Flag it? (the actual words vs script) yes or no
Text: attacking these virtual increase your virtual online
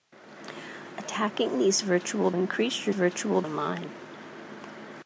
no